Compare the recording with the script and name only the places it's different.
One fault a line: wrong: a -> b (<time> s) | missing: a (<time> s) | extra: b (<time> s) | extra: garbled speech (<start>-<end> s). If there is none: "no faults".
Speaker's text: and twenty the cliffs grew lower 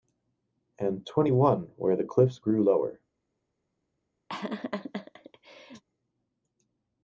extra: one where (1.3 s)